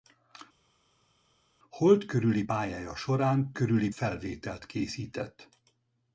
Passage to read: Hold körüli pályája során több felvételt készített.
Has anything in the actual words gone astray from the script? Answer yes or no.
yes